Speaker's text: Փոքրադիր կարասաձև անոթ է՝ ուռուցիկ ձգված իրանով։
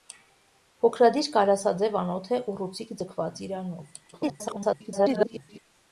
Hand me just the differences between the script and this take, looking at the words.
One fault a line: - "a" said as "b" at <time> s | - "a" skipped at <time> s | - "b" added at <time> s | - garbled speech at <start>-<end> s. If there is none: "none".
- garbled speech at 4.1-5.6 s